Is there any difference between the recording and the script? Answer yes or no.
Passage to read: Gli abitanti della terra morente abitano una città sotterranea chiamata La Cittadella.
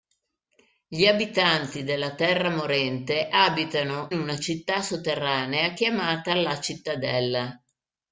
no